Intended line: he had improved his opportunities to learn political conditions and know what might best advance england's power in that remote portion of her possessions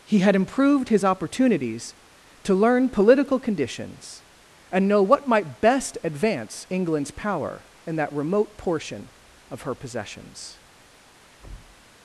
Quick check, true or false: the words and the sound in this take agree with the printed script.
false